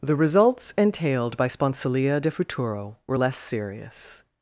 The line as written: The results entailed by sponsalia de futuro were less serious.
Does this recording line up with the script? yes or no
yes